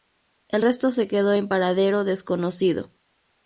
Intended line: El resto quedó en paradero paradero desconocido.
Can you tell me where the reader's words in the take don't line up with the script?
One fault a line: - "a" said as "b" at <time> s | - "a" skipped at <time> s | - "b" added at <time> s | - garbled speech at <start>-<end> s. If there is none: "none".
- "se" added at 0.9 s
- "paradero" skipped at 2.0 s